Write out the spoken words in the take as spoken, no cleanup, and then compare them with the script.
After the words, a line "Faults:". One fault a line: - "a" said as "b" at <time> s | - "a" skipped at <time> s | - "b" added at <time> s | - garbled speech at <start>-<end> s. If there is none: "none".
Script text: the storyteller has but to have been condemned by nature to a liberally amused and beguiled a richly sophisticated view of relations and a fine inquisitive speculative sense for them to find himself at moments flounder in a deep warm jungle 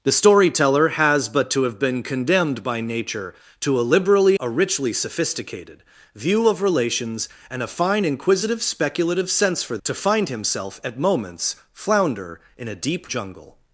the storyteller has but to have been condemned by nature to a liberally a richly sophisticated view of relations and a fine inquisitive speculative sense for to find himself at moments flounder in a deep jungle
Faults:
- "amused and beguiled" skipped at 4.3 s
- "them" skipped at 9.8 s
- "warm" skipped at 13.1 s